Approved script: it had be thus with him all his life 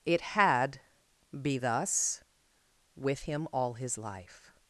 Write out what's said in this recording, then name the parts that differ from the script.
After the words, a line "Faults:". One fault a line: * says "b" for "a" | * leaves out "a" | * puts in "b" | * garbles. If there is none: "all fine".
it had be thus with him all his life
Faults:
all fine